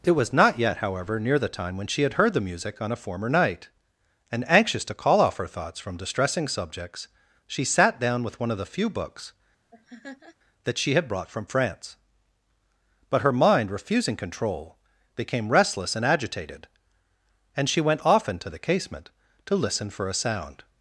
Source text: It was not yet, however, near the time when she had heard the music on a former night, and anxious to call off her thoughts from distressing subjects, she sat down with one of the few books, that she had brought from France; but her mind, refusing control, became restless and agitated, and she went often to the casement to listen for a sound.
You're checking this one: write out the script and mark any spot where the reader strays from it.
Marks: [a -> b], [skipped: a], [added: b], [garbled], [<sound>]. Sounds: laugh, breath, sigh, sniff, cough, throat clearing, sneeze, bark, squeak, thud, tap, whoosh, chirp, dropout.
It was not yet, however, near the time when she had heard the music on a former night, and anxious to call off her thoughts from distressing subjects, she sat down with one of the few books, [laugh] that she had brought from France; but her mind, refusing control, became restless and agitated, and she went often to the casement to listen for a sound.